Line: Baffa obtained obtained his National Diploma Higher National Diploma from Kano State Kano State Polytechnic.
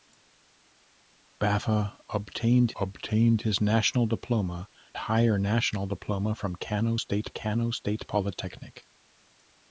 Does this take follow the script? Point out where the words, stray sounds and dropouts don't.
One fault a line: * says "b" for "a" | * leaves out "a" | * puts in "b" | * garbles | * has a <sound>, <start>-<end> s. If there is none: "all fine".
all fine